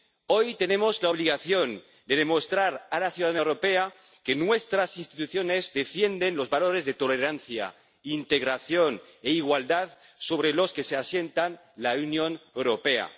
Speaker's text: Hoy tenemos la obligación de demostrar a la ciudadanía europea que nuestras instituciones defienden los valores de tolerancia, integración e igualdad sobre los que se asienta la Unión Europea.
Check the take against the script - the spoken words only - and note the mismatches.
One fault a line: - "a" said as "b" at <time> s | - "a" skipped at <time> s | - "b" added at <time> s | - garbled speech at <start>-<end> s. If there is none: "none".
none